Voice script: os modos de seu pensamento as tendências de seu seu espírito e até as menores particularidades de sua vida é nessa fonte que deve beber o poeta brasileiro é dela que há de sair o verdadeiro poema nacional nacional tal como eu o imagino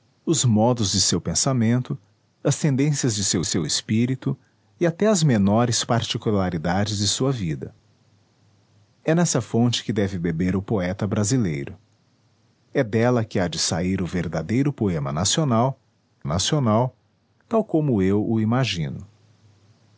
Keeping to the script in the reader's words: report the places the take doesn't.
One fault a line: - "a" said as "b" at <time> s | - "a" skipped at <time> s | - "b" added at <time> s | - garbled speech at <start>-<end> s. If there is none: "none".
none